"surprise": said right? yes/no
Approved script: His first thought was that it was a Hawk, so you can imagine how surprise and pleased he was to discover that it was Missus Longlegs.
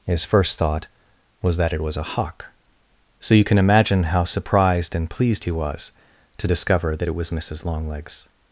no